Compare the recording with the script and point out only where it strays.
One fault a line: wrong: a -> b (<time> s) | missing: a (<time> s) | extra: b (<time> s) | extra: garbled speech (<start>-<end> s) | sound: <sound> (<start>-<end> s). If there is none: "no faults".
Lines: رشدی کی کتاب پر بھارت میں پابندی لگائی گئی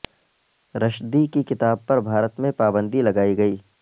no faults